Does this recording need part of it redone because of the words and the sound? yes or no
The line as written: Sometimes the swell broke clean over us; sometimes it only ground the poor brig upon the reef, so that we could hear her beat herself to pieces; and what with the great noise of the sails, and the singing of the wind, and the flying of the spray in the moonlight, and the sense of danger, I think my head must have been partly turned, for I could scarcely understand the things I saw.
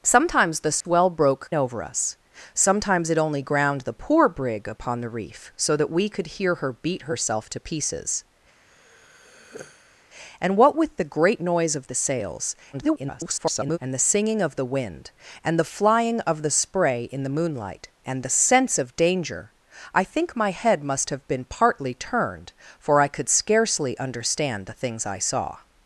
yes